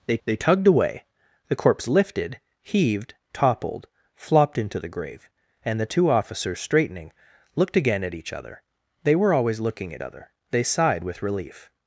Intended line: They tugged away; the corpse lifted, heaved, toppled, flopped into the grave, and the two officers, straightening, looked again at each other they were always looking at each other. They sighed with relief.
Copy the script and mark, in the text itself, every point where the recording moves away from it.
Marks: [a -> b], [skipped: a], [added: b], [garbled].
They [added: they] tugged away; the corpse lifted, heaved, toppled, flopped into the grave, and the two officers, straightening, looked again at each other they were always looking at [skipped: each] other. They sighed with relief.